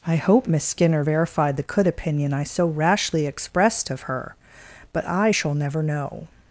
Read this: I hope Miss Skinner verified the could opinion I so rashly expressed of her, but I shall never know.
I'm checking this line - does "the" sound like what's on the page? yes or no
yes